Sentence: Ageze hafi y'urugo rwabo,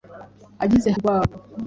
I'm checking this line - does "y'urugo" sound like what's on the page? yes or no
no